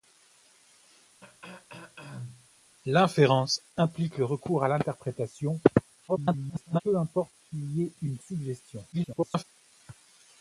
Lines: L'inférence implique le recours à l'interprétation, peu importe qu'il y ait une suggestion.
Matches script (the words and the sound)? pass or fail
fail